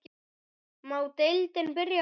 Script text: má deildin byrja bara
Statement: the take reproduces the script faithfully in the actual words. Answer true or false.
true